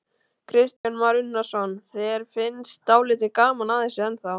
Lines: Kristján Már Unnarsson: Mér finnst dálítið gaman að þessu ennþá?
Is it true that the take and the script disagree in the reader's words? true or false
true